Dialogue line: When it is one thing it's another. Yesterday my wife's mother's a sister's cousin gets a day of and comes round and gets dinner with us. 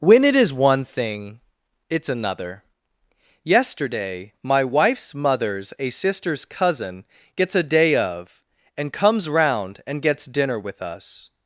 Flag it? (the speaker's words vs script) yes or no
no